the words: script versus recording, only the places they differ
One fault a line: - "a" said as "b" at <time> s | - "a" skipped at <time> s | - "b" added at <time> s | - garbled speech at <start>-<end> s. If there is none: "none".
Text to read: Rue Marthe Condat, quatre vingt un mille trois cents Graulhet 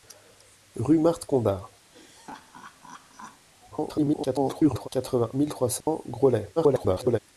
- garbled speech at 3.7-4.9 s
- "un" skipped at 5.3 s
- garbled speech at 6.6-7.2 s